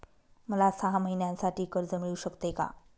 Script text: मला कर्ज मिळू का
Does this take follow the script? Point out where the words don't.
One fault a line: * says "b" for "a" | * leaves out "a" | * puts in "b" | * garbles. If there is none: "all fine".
* puts in "सहा महिन्यांसाठी"
* puts in "शकते"